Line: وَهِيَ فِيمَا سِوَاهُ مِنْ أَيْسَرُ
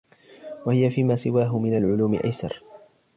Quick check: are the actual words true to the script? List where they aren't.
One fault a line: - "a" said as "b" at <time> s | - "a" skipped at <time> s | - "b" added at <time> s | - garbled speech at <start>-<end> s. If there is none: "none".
- "الْعُلُومِ" added at 1.7 s